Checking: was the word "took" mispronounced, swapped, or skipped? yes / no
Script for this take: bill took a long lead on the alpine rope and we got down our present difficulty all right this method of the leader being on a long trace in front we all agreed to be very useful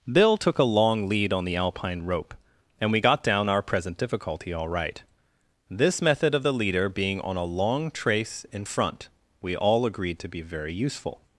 no